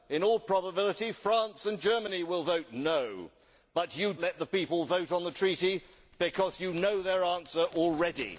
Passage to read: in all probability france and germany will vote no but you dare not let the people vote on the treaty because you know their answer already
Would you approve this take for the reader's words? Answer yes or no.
no